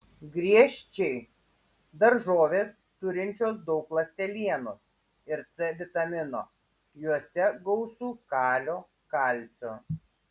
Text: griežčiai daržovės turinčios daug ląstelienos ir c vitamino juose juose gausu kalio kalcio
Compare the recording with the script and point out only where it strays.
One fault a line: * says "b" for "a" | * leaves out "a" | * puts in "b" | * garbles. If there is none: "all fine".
* leaves out "juose"